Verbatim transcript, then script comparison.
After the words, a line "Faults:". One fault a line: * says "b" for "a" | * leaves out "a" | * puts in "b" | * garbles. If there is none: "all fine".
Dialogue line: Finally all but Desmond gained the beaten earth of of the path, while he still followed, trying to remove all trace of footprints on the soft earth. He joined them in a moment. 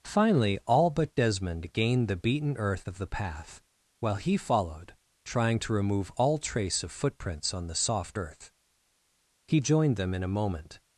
Finally all but Desmond gained the beaten earth of the path, while he followed, trying to remove all trace of footprints on the soft earth. He joined them in a moment.
Faults:
* leaves out "of"
* leaves out "still"